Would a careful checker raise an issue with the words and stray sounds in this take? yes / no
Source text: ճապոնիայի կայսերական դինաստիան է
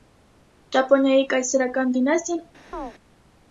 yes